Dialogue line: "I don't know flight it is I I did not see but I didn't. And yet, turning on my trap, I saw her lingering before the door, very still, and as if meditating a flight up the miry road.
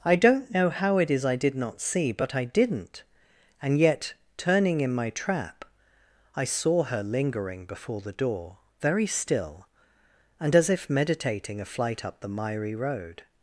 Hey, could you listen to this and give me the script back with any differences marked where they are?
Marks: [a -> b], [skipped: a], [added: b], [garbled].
"I don't know [flight -> how] it is I [skipped: I] did not see but I didn't. And yet, turning [on -> in] my trap, I saw her lingering before the door, very still, and as if meditating a flight up the miry road.